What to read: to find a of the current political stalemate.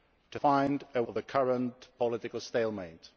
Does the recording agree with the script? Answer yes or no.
yes